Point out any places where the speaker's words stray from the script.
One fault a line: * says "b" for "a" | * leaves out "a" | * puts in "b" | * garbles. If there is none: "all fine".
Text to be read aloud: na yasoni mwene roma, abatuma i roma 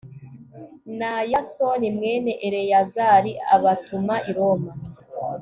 * says "eleyazari" for "roma"